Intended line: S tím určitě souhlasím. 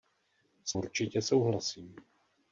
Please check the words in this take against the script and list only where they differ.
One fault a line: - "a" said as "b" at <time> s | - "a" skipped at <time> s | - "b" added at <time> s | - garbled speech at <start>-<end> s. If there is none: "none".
- "tím" skipped at 0.7 s